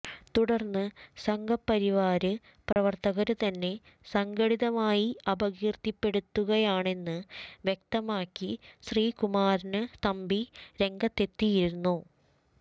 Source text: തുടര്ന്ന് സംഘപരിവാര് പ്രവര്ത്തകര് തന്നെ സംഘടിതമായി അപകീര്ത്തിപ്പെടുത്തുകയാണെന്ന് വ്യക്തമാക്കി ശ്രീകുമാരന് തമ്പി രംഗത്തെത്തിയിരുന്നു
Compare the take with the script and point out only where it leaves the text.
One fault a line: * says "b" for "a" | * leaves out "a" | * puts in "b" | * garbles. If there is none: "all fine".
all fine